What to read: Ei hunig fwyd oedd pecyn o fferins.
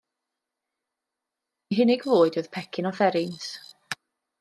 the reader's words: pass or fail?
pass